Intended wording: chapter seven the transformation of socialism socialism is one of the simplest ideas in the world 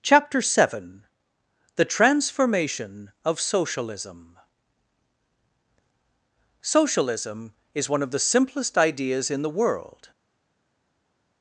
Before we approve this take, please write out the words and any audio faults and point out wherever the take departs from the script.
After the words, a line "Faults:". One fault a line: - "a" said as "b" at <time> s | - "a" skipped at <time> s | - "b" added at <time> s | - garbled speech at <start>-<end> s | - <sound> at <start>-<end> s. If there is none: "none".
chapter seven the transformation of socialism socialism is one of the simplest ideas in the world
Faults:
none